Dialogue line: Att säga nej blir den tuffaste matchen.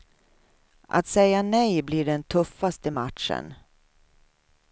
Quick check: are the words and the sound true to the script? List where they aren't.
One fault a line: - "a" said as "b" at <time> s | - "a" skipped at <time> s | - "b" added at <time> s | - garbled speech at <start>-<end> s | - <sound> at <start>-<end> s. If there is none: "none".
none